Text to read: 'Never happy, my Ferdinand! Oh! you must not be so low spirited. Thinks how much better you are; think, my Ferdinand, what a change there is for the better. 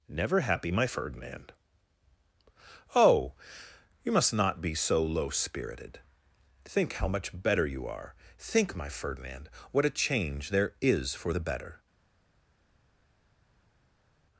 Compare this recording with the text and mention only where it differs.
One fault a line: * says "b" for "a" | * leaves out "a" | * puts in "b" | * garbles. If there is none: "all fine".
* says "Think" for "Thinks"